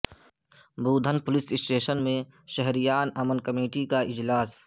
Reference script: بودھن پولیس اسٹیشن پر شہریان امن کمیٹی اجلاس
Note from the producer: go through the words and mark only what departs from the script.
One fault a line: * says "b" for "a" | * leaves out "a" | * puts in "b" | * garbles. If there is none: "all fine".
* says "میں" for "پر"
* puts in "کا"